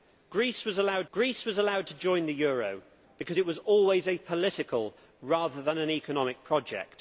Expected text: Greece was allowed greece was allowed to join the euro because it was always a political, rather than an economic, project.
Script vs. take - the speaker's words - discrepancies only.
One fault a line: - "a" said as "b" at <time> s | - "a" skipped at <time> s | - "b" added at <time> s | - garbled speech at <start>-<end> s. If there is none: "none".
none